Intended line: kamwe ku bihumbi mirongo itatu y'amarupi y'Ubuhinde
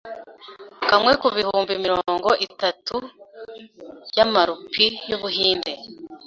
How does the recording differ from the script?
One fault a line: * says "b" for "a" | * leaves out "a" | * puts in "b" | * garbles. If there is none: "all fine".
all fine